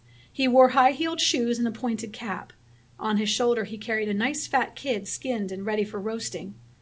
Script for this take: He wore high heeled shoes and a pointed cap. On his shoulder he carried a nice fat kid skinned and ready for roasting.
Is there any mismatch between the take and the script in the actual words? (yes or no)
no